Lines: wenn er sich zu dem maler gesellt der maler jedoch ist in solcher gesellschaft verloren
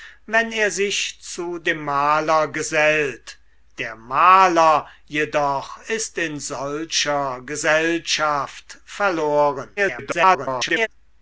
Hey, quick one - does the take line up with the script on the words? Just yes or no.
no